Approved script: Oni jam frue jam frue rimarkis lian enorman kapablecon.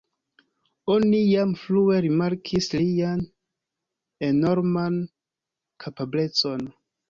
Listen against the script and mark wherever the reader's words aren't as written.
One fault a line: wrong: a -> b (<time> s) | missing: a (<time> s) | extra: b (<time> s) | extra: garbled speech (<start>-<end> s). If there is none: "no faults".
missing: jam frue (2.0 s)